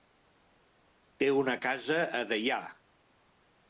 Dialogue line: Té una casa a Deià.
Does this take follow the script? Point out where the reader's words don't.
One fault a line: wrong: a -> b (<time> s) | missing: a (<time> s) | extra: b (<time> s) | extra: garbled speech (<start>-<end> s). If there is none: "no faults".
no faults